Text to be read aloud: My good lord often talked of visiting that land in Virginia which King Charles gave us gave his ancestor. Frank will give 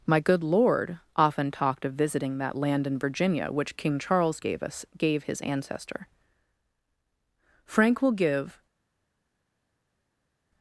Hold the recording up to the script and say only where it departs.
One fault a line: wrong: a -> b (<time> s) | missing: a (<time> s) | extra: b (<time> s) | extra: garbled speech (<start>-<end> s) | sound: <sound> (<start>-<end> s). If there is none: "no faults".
no faults